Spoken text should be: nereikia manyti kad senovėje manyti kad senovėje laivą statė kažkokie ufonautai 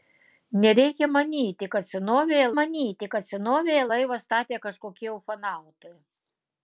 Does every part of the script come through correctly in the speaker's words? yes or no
yes